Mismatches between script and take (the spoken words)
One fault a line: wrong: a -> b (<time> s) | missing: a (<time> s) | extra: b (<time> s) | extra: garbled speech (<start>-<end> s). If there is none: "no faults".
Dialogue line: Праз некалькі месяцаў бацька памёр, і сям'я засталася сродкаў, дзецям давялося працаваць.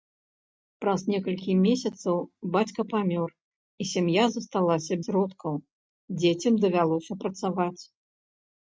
no faults